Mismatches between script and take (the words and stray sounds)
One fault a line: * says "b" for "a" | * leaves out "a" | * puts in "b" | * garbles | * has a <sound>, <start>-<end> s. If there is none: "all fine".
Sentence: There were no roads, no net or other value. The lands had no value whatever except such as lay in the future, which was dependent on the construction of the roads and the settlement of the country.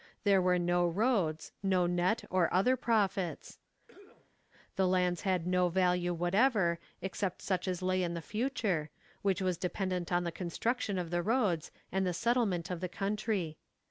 * says "profits" for "value"
* has a cough, 3.9-4.4 s